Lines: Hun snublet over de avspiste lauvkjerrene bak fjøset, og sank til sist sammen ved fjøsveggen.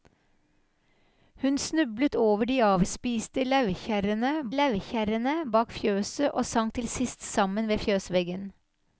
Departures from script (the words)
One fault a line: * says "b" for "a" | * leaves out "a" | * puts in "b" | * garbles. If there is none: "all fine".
* puts in "lauvkjerrene"